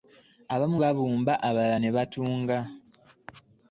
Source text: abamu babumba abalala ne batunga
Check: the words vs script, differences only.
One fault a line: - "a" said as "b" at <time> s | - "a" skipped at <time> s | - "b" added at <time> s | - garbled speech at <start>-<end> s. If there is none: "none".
none